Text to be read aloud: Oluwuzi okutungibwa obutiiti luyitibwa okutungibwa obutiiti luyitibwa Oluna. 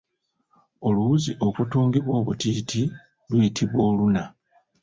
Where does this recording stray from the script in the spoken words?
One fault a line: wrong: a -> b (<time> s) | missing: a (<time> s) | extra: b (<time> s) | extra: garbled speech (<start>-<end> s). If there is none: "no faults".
missing: okutungibwa obutiiti luyitibwa (3.8 s)